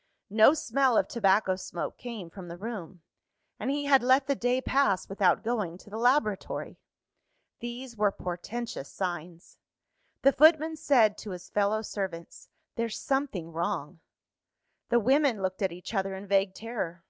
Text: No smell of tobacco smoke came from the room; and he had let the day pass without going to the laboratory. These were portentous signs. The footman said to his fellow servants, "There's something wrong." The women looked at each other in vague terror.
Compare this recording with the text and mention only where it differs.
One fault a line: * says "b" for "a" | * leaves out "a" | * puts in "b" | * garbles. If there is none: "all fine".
all fine